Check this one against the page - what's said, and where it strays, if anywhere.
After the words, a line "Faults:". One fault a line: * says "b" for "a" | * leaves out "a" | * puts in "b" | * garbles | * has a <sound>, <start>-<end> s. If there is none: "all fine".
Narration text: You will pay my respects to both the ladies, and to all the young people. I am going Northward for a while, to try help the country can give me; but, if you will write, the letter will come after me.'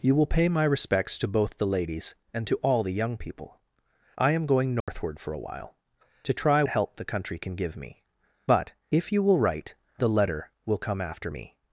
You will pay my respects to both the ladies, and to all the young people. I am going Northward for a while, to try help the country can give me; but, if you will write, the letter will come after me.'
Faults:
* has a dropout, 4.8-4.9 s